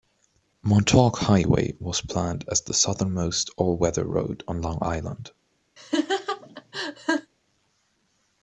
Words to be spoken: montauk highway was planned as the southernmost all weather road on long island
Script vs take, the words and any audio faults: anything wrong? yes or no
yes